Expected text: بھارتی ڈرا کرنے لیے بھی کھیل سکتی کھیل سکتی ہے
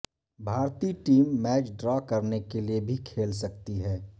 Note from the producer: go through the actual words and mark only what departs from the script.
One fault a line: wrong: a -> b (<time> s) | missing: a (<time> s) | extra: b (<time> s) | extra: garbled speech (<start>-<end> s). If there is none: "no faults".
extra: ٹیم میچ (1.1 s)
extra: کے (2.5 s)
missing: کھیل سکتی (3.8 s)